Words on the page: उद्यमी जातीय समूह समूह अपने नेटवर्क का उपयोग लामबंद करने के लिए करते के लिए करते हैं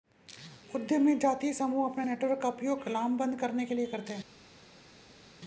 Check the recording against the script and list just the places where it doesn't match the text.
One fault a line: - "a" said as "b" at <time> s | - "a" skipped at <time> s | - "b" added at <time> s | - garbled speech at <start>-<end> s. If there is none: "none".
- "समूह" skipped at 1.9 s
- "के लिए करते" skipped at 4.1 s